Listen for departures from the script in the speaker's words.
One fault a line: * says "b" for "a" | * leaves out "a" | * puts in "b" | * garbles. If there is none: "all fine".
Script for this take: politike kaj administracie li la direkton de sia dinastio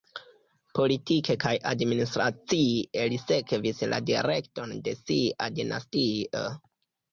* puts in "sekvis"